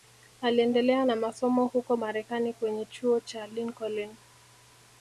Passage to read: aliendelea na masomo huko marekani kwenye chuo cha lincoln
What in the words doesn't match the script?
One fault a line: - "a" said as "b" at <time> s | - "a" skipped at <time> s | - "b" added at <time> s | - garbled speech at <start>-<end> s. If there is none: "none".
none